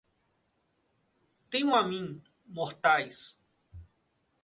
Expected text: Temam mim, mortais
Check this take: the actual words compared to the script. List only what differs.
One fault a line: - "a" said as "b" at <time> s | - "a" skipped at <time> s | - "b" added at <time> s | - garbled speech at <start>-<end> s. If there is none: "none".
- "a" added at 1.7 s